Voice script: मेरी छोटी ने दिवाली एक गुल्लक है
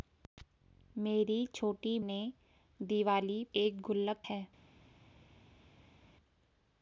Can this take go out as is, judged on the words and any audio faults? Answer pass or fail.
pass